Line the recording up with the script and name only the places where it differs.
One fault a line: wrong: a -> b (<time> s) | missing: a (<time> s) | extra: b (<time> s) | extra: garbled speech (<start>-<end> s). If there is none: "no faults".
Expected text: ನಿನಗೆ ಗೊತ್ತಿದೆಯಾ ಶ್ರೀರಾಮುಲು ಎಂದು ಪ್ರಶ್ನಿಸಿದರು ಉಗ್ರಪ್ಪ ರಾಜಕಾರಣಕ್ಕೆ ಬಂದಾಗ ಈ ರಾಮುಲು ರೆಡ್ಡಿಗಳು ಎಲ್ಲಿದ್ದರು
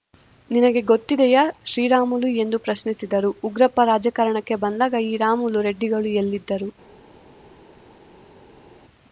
no faults